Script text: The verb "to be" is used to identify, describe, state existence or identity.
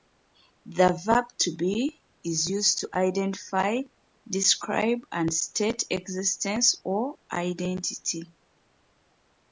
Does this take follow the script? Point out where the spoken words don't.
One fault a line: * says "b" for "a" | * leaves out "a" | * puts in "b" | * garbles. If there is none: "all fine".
* puts in "and"